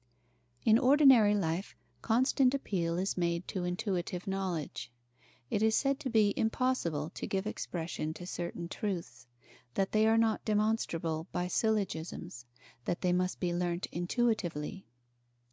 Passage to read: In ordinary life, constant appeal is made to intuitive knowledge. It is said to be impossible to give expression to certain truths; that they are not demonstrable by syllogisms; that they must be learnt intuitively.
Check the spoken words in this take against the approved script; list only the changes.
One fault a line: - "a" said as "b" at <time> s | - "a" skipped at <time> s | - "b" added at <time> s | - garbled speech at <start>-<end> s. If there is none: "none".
none